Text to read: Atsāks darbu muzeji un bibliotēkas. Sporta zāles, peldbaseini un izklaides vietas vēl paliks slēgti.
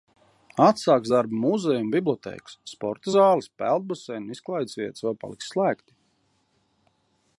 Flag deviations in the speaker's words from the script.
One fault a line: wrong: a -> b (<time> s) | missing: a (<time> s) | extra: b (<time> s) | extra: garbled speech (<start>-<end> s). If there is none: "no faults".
no faults